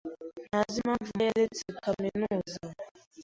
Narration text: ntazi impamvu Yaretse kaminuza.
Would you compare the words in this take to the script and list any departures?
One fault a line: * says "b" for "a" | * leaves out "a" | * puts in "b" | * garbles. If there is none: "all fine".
all fine